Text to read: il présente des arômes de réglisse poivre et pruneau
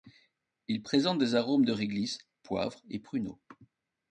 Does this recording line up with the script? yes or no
yes